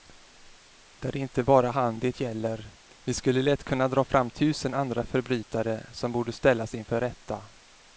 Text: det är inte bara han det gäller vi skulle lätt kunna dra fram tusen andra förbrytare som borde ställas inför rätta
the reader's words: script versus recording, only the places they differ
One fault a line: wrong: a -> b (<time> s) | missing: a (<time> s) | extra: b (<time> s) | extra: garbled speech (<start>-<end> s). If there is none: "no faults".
no faults